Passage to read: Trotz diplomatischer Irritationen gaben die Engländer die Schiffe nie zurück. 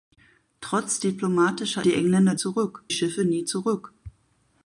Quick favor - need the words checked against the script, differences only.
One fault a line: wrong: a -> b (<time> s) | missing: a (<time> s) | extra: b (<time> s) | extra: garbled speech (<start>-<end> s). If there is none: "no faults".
missing: Irritationen gaben (1.9 s)
wrong: die -> zurück (2.3 s)